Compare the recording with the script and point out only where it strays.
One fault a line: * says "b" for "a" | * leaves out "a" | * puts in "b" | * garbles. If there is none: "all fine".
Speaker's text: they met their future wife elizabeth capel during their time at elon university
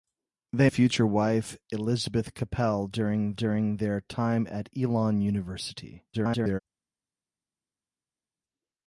* leaves out "met their"
* puts in "during"
* garbles